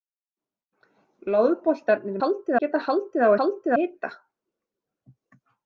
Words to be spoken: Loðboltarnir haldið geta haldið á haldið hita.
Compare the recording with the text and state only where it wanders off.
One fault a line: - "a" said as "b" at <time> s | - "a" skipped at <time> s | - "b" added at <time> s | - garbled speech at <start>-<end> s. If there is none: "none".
none